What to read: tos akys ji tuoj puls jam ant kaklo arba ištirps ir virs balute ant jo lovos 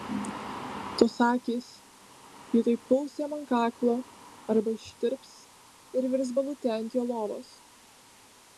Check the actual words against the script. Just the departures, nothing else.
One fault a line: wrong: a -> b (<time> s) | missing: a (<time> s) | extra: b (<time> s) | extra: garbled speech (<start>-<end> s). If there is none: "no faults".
no faults